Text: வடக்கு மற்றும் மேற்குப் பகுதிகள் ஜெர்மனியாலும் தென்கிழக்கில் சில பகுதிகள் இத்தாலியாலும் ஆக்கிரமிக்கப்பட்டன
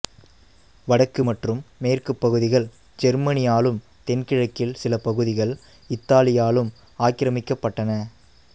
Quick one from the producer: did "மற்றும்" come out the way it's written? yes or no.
yes